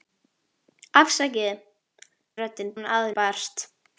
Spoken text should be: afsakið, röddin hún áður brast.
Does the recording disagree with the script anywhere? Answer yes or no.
no